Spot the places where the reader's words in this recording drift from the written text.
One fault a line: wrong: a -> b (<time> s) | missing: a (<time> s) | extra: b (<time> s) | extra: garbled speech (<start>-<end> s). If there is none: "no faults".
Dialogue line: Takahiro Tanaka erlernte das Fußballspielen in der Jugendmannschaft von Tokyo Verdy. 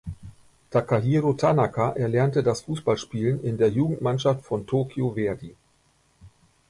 no faults